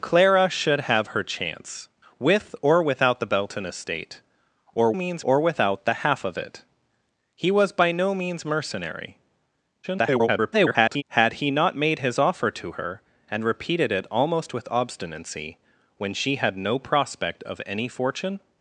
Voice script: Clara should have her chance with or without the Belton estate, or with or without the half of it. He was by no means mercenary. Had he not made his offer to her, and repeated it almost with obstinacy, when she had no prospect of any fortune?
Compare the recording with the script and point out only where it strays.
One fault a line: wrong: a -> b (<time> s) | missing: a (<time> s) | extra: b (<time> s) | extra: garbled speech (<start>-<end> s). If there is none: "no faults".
wrong: with -> means (4.9 s)
extra: garbled speech (9.8-11.0 s)